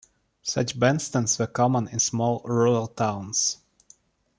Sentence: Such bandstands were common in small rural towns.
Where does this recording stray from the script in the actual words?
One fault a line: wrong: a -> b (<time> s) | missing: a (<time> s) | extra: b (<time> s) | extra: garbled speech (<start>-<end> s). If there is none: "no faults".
no faults